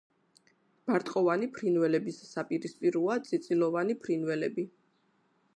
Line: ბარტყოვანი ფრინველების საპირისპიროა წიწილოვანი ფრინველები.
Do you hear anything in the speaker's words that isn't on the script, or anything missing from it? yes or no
no